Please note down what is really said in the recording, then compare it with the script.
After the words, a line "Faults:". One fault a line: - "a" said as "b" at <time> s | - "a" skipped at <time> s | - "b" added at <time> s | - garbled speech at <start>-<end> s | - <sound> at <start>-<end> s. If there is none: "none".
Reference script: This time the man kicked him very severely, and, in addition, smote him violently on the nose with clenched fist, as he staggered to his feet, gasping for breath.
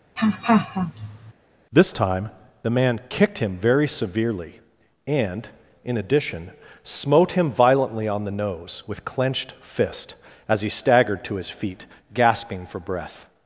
This time the man kicked him very severely, and, in addition, smote him violently on the nose with clenched fist, as he staggered to his feet, gasping for breath.
Faults:
- laugh at 0.2-1.3 s